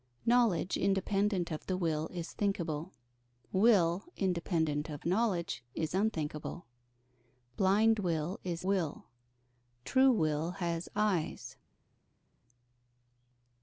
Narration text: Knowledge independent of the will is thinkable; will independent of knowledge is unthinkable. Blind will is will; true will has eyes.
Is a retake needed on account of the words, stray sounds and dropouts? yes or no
no